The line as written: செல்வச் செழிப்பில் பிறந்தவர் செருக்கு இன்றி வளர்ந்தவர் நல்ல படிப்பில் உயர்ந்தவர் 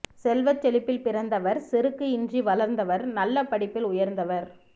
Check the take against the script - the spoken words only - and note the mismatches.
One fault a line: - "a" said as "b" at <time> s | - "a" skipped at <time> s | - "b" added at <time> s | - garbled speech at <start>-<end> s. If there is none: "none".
none